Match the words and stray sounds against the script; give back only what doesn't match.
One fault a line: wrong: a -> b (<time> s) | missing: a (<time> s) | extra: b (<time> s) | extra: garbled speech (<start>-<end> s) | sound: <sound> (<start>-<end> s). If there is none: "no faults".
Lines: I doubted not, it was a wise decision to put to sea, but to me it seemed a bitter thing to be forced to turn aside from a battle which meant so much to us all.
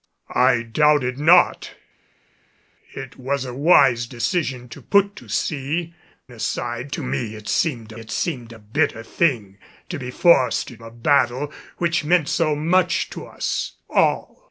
wrong: but -> aside (6.3 s)
extra: it seemed (8.0 s)
missing: turn aside from (10.8 s)